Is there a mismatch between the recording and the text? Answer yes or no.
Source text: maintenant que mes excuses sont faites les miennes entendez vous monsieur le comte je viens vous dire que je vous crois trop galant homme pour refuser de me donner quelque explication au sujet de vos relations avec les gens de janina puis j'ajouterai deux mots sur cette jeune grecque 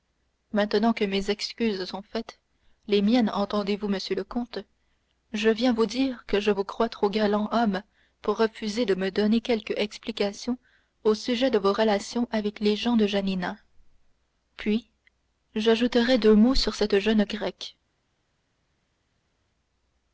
no